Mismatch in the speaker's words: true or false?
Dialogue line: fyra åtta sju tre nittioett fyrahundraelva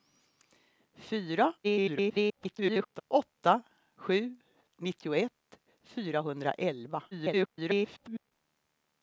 true